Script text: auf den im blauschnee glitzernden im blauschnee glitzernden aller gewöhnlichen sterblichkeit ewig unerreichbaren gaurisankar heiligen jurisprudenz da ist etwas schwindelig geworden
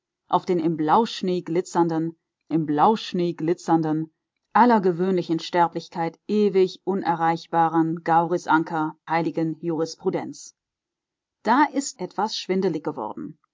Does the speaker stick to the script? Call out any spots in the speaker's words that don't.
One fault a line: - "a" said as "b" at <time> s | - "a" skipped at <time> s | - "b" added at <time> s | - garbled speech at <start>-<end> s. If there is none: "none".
none